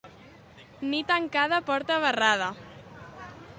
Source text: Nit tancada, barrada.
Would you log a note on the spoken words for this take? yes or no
yes